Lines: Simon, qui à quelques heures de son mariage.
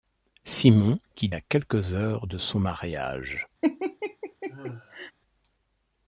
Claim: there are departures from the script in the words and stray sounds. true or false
true